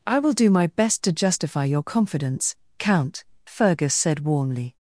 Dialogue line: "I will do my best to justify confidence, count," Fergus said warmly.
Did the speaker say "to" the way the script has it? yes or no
yes